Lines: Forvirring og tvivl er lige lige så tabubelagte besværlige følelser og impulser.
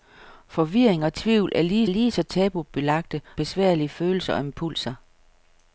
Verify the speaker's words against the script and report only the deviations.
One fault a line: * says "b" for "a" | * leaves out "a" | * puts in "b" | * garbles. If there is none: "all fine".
all fine